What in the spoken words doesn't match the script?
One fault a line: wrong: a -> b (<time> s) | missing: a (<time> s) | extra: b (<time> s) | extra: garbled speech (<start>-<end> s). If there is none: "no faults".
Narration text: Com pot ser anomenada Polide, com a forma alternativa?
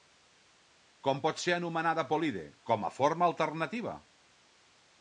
no faults